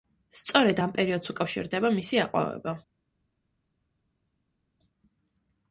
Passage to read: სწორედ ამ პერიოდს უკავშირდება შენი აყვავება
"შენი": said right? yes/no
no